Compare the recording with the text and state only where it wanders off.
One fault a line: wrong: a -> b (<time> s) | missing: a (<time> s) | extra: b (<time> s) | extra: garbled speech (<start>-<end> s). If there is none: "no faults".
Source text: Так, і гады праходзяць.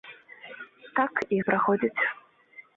missing: гады (1.4 s)